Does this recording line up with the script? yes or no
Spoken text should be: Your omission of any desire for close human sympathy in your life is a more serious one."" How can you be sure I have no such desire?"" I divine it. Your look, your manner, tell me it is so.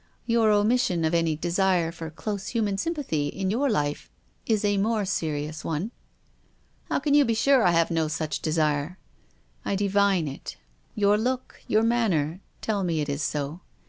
yes